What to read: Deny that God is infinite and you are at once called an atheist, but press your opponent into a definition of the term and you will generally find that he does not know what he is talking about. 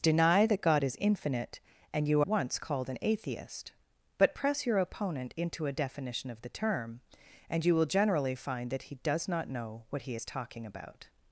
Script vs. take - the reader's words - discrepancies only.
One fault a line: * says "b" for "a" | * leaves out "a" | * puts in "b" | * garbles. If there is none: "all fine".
* leaves out "are at"